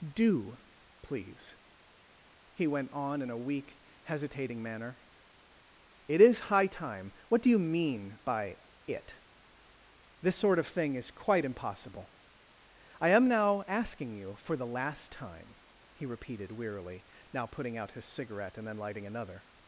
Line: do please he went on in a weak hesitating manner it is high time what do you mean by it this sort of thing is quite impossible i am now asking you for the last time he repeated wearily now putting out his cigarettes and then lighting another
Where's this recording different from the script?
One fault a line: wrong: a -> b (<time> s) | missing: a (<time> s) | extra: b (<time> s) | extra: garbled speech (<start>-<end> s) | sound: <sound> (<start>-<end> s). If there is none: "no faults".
wrong: cigarettes -> cigarette (18.0 s)